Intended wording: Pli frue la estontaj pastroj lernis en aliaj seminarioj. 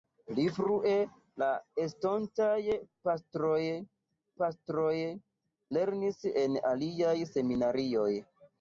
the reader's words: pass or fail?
fail